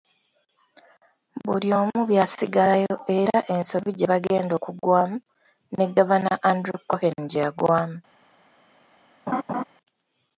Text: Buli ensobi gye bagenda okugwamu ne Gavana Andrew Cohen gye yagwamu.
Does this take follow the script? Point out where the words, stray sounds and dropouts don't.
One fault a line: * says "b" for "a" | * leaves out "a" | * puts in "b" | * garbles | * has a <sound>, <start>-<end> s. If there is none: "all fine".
* puts in "omu byasigalayo era"
* has a laugh, 9.3-9.6 s